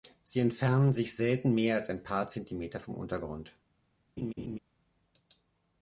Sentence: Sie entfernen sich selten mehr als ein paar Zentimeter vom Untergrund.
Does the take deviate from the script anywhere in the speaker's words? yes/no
no